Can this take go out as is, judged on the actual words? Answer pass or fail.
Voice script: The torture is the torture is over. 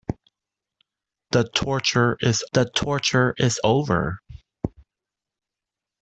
pass